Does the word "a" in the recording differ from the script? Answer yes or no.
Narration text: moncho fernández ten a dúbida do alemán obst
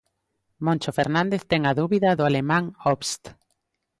no